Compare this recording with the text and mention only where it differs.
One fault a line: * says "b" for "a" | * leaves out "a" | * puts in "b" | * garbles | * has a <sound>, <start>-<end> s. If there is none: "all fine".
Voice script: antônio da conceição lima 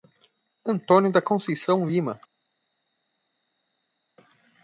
all fine